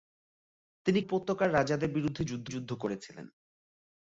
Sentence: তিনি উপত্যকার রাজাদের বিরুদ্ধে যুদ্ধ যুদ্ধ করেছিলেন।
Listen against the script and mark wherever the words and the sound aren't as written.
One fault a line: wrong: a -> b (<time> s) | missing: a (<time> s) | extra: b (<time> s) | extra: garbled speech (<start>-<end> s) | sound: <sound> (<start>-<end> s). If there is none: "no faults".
no faults